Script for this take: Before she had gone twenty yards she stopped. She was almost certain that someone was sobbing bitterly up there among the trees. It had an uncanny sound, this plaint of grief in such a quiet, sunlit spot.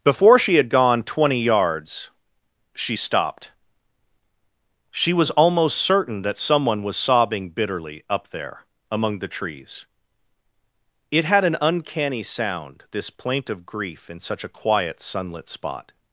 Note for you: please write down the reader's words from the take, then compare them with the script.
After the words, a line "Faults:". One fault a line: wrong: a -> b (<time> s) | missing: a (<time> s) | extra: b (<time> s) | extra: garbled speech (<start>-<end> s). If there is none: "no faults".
Before she had gone twenty yards she stopped. She was almost certain that someone was sobbing bitterly up there among the trees. It had an uncanny sound, this plaint of grief in such a quiet, sunlit spot.
Faults:
no faults